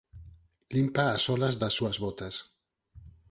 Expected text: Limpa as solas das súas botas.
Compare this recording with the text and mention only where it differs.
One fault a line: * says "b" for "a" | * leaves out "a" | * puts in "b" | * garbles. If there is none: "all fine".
all fine